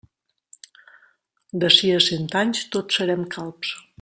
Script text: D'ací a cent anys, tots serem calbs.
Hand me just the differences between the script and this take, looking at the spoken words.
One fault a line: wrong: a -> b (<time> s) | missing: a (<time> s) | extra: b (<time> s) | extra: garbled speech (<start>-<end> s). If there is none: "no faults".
no faults